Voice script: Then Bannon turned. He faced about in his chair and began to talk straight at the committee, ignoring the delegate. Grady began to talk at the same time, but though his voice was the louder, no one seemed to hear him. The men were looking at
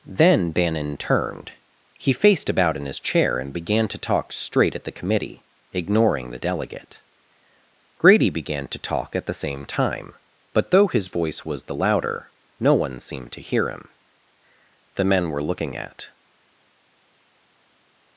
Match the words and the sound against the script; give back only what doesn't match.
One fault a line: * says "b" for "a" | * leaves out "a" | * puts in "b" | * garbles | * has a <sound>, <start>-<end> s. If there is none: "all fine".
all fine